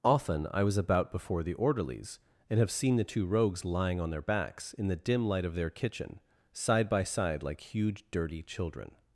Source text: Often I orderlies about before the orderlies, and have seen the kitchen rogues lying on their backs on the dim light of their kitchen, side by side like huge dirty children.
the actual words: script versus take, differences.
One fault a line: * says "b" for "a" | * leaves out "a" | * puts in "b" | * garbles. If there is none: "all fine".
* says "was" for "orderlies"
* says "two" for "kitchen"
* says "in" for "on"